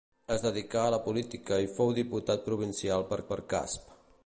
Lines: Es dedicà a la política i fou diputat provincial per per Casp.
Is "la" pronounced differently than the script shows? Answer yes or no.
no